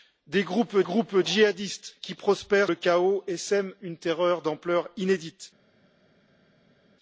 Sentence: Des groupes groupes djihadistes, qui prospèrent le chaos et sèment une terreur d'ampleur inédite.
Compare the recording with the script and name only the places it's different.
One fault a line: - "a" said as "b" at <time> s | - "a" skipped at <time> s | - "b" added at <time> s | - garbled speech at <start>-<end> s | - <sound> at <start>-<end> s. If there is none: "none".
none